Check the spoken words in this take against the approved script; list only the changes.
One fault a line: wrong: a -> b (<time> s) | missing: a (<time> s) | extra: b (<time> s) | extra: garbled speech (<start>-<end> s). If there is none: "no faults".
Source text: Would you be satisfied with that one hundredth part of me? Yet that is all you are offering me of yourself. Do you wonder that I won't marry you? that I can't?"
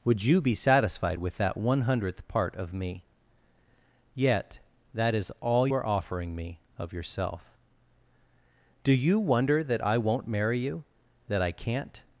missing: you (5.7 s)